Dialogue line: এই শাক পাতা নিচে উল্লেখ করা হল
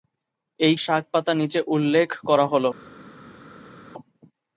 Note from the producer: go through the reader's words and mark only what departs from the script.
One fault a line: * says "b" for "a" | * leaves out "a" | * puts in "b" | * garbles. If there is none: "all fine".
all fine